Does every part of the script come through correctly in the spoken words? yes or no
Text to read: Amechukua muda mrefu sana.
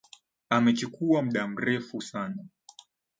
yes